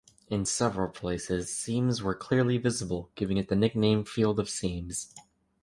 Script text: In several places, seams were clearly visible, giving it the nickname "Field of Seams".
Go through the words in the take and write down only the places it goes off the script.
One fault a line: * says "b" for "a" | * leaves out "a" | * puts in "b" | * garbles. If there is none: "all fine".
all fine